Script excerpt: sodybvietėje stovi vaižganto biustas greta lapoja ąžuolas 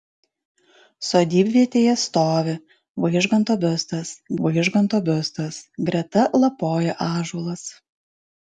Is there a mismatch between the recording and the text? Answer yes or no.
yes